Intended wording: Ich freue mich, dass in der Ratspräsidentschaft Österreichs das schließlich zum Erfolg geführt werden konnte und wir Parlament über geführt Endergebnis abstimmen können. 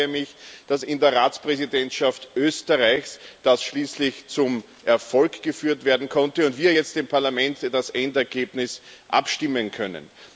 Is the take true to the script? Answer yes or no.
no